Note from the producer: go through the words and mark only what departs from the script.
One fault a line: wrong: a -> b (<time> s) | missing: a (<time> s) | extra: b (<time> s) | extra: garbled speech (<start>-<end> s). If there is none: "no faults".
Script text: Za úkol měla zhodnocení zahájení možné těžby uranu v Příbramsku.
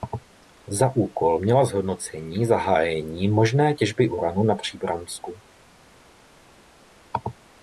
wrong: v -> na (4.4 s)